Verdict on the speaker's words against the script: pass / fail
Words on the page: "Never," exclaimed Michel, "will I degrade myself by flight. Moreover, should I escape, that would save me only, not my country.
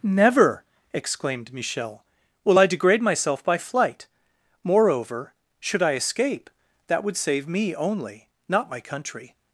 pass